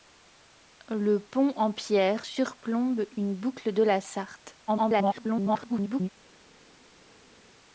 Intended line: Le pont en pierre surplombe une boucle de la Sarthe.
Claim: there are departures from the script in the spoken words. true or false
true